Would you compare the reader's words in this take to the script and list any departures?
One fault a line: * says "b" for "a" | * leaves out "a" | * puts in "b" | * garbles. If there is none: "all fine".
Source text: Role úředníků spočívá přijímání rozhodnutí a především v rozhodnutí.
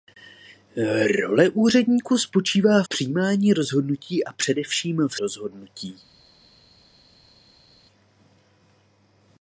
all fine